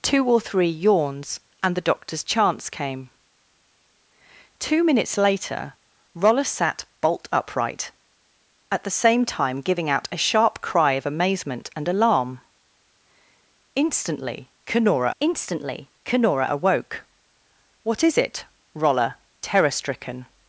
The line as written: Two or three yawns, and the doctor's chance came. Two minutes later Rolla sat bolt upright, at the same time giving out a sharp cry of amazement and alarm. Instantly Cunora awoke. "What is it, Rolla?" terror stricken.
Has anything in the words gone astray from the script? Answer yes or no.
yes